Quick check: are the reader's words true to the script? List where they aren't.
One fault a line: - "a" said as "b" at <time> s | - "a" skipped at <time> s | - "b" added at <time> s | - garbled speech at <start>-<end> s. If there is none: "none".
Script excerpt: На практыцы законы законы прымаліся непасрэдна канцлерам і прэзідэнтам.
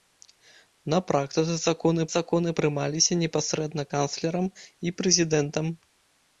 none